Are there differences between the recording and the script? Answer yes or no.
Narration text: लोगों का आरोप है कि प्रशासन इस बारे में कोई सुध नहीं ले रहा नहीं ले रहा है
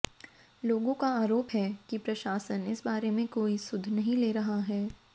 yes